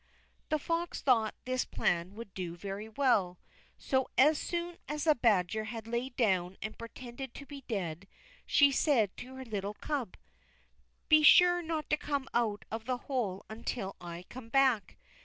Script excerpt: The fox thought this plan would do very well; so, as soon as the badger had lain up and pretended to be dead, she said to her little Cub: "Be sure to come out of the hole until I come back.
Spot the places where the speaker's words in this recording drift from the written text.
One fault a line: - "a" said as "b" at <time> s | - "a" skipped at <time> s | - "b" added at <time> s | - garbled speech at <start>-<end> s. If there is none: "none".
- "up" said as "down" at 6.2 s
- "not" added at 11.6 s